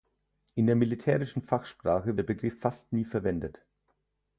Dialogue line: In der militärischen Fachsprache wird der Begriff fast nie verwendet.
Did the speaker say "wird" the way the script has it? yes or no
no